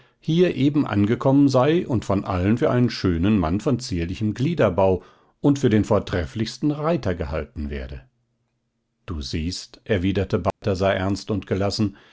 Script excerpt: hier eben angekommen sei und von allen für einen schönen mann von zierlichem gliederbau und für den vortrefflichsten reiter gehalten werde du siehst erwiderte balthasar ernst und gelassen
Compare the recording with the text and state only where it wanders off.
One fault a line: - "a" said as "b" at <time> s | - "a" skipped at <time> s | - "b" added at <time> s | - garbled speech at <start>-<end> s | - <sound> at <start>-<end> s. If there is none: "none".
- dropout at 10.5-10.6 s